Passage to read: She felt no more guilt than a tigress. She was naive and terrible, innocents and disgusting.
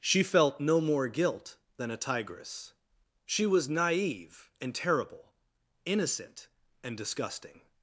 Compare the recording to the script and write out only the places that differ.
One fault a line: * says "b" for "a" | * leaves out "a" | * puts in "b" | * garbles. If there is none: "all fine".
* says "innocent" for "innocents"